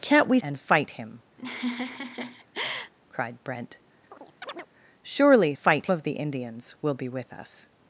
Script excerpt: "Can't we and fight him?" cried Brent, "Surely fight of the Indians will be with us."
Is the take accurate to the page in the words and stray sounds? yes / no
no